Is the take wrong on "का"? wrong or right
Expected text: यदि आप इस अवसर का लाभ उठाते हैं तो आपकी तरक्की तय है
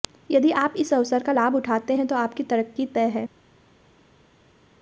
right